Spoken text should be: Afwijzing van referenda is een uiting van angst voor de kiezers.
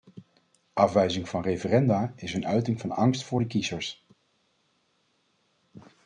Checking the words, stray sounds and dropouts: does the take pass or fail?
pass